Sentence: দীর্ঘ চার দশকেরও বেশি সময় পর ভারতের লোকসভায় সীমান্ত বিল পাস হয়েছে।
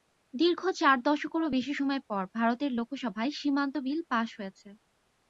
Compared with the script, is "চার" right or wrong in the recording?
right